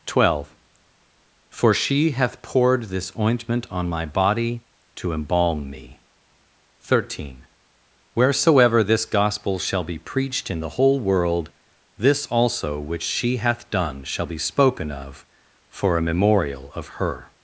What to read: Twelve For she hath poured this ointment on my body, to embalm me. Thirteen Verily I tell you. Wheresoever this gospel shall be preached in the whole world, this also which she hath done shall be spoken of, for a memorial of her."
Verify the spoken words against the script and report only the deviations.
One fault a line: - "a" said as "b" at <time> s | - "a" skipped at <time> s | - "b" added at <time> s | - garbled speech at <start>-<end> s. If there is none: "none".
- "Verily I tell you" skipped at 7.5 s